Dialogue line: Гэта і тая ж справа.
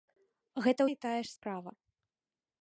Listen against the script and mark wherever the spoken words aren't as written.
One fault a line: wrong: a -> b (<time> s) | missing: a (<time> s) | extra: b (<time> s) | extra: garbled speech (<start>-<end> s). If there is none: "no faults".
no faults